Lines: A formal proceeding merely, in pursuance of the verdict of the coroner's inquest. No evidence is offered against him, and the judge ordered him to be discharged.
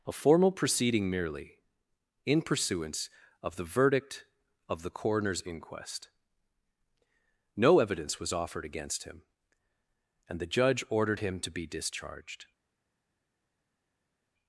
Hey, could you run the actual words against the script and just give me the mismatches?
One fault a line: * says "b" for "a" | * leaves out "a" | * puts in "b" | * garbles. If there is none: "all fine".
* says "was" for "is"